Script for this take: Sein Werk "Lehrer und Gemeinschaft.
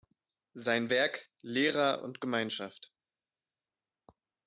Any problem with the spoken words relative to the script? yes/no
no